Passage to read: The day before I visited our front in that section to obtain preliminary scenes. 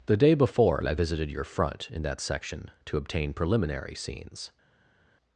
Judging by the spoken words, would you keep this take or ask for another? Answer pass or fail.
fail